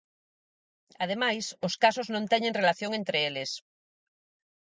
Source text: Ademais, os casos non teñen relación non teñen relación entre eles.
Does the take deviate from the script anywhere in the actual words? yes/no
yes